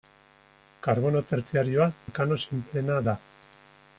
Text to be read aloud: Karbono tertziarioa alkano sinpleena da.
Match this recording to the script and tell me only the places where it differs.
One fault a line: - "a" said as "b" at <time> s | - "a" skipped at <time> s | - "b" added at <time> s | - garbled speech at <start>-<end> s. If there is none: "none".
none